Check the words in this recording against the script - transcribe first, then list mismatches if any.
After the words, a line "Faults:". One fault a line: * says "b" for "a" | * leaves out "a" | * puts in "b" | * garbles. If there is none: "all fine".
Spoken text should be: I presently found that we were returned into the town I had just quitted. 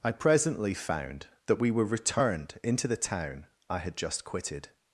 I presently found that we were returned into the town I had just quitted.
Faults:
all fine